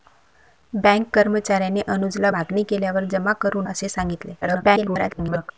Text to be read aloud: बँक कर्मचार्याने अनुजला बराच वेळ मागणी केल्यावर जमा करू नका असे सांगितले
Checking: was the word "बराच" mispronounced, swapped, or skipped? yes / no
yes